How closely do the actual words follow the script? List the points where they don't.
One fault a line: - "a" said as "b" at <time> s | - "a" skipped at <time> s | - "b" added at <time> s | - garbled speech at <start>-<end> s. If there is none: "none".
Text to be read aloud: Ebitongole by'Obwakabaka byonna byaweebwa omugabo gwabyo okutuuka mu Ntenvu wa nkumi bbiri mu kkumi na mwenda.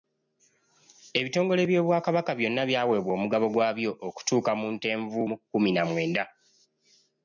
- "wa nkumi bbiri" skipped at 5.2 s